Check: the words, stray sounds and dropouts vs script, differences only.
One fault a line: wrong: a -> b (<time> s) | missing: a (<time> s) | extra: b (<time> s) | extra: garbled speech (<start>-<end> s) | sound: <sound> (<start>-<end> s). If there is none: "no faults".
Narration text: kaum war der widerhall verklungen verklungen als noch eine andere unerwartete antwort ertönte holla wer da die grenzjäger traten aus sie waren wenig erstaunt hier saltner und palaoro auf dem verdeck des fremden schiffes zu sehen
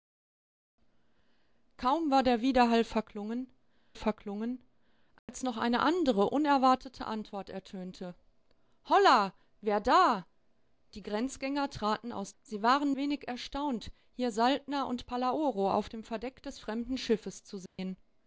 sound: dropout (5.2-5.3 s)
sound: dropout (17.7-17.8 s)